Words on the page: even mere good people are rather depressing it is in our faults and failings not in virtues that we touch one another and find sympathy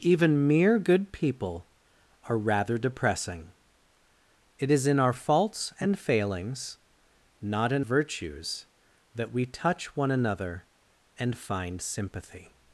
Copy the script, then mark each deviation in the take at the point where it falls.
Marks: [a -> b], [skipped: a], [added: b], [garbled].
even mere good people are rather depressing it is in our faults and failings not in virtues that we touch one another and find sympathy